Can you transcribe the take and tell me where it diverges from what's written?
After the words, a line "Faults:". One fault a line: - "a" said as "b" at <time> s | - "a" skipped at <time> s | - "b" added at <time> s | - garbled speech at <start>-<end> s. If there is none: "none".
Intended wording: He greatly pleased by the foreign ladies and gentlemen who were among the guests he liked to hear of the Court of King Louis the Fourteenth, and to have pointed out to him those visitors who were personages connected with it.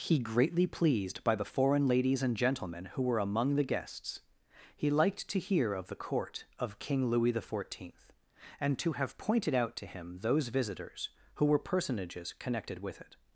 He greatly pleased by the foreign ladies and gentlemen who were among the guests he liked to hear of the Court of King Louis the Fourteenth, and to have pointed out to him those visitors who were personages connected with it.
Faults:
none